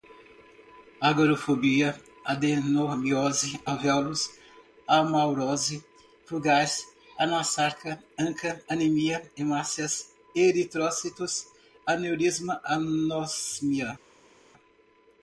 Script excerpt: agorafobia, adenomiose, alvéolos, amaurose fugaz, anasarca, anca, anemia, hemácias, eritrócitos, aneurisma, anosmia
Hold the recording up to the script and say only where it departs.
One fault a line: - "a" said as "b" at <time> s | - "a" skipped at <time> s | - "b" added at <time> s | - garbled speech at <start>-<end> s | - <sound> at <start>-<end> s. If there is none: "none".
none